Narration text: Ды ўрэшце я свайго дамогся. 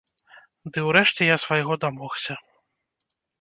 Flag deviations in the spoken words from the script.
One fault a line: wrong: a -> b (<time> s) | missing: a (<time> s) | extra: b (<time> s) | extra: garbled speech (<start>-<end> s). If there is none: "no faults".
no faults